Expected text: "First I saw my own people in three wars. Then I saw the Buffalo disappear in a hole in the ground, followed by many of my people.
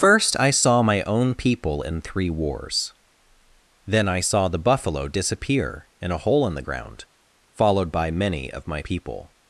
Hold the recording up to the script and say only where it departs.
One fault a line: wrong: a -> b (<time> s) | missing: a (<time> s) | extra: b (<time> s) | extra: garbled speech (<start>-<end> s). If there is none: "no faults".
no faults